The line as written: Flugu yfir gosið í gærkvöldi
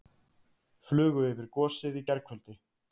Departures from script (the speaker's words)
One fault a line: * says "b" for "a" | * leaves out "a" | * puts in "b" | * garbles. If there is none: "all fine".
all fine